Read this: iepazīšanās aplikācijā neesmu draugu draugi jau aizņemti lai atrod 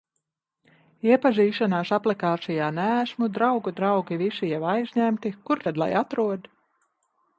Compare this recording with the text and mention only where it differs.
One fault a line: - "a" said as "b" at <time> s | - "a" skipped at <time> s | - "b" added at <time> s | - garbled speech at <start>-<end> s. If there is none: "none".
- "visi" added at 4.2 s
- "kur tad" added at 5.5 s